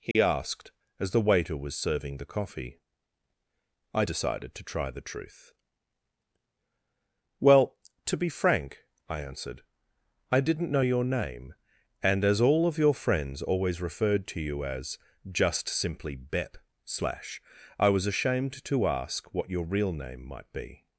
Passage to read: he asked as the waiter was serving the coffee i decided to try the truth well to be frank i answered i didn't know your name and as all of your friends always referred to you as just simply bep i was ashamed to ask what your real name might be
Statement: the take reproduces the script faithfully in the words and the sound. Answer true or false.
false